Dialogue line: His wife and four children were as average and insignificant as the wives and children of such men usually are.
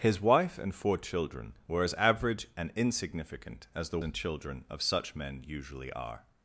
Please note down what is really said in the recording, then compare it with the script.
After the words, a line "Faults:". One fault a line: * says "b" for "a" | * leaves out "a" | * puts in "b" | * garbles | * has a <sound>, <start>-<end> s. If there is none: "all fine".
His wife and four children were as average and insignificant as the and children of such men usually are.
Faults:
* leaves out "wives"